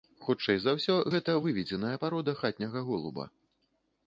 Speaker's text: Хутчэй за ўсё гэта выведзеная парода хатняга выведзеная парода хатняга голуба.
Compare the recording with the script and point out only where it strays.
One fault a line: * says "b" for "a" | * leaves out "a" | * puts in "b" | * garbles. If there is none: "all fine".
* leaves out "выведзеная парода хатняга"